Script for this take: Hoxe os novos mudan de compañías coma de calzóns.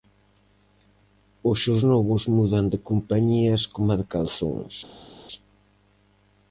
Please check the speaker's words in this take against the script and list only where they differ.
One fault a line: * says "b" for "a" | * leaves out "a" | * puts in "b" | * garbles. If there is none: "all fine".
all fine